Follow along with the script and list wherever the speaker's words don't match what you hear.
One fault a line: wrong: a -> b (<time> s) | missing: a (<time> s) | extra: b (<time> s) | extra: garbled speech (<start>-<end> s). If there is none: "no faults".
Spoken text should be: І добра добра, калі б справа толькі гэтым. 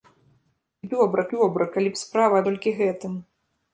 no faults